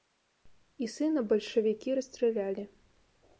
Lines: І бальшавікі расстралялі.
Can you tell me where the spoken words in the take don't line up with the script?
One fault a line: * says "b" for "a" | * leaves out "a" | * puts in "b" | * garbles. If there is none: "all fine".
* puts in "сына"